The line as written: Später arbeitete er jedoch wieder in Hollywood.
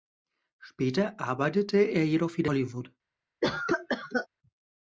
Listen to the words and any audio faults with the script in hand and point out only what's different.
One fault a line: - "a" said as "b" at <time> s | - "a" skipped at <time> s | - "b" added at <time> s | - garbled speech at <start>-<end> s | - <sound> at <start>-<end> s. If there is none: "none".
- "in" skipped at 2.5 s
- cough at 3.4-4.3 s